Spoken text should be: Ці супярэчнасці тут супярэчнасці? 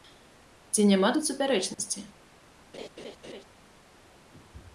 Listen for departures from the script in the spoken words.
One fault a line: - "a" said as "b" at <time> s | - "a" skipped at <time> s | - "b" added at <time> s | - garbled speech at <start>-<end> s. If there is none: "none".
- "супярэчнасці" said as "няма" at 0.9 s